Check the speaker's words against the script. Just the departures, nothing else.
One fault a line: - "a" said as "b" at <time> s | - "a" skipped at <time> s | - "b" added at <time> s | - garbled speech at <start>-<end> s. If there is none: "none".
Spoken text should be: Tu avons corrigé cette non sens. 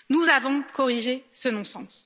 - "Tu" said as "Nous" at 0.1 s
- "cette" said as "ce" at 1.3 s